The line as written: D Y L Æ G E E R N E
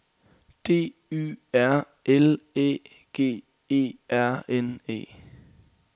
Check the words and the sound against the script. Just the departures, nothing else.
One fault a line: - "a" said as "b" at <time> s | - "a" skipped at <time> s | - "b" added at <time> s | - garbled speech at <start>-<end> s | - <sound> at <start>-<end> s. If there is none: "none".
- "R" added at 1.5 s
- "E" skipped at 3.8 s